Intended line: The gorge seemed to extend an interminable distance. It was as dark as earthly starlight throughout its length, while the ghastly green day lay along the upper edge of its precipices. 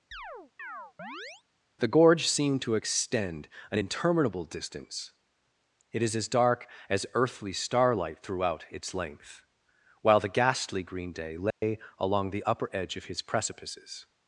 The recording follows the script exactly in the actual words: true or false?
false